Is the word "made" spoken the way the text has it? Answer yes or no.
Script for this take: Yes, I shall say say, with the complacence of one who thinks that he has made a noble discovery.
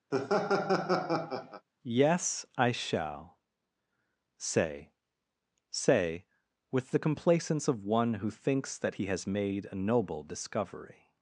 yes